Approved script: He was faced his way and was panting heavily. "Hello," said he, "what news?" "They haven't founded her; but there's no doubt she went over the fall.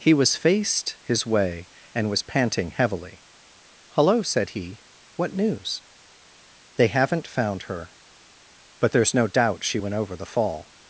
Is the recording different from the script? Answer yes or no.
yes